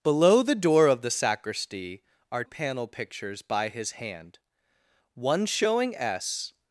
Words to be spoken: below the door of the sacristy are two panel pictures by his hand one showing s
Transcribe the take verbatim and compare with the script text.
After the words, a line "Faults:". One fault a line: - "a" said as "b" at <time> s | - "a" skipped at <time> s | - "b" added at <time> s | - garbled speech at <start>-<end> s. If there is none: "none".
below the door of the sacristy are panel pictures by his hand one showing s
Faults:
- "two" skipped at 2.4 s